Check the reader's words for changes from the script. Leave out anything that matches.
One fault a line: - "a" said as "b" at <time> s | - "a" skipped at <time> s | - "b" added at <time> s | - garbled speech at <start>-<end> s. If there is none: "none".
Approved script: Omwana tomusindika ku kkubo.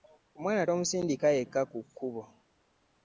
- "yekka" added at 1.4 s